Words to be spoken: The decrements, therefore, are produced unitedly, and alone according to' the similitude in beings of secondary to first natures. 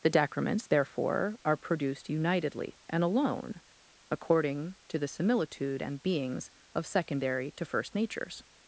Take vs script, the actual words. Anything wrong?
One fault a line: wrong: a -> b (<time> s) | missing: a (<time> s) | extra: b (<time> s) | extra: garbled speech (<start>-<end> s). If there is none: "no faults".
wrong: in -> and (5.8 s)